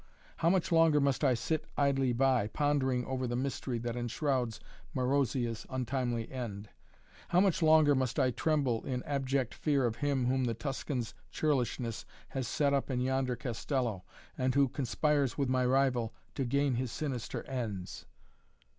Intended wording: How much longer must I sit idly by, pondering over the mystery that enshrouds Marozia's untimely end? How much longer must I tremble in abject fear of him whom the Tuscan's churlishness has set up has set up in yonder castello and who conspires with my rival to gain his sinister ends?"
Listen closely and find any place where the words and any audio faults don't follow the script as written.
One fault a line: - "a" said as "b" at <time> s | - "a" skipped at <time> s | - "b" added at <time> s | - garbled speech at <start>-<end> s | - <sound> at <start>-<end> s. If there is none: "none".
- "has set up" skipped at 12.9 s